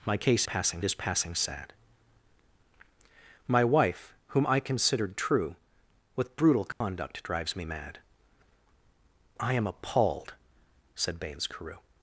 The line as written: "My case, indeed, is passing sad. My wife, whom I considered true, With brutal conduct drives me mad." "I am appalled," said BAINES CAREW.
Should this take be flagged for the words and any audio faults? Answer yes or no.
yes